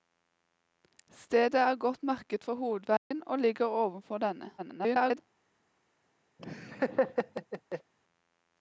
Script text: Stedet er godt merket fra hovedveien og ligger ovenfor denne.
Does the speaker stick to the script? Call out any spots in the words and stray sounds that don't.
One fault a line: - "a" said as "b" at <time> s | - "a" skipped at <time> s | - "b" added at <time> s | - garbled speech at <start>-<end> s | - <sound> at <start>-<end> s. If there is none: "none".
- dropout at 3.0-3.1 s
- garbled speech at 4.6-5.2 s
- laugh at 6.4-7.9 s